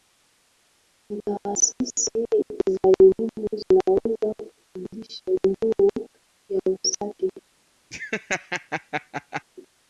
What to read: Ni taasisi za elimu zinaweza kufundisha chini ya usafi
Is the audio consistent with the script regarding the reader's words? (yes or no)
no